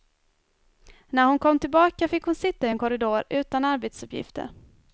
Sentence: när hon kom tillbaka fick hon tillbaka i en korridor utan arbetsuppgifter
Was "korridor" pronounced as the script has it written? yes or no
yes